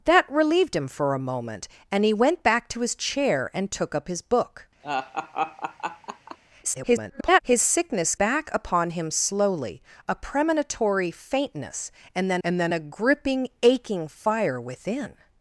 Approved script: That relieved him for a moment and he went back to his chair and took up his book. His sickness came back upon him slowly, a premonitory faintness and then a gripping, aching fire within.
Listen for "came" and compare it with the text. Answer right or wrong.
wrong